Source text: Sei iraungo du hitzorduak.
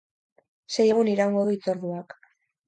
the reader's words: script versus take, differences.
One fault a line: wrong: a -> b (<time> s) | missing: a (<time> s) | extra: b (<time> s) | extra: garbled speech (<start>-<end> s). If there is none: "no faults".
extra: egun (0.9 s)